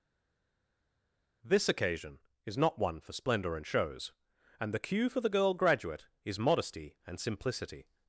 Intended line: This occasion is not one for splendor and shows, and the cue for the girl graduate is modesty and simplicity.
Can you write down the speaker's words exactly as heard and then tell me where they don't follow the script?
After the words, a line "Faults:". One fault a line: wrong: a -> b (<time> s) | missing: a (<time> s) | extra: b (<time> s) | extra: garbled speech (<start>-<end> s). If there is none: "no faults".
This occasion is not one for splendor and shows, and the cue for the girl graduate is modesty and simplicity.
Faults:
no faults